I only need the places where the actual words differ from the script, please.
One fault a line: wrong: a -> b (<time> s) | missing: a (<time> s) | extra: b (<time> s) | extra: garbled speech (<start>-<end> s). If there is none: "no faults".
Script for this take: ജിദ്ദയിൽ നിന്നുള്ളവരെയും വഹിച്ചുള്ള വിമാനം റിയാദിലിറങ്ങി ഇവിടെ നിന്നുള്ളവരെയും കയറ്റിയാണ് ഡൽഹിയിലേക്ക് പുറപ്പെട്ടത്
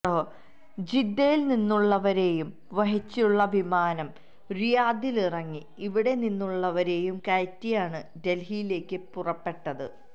no faults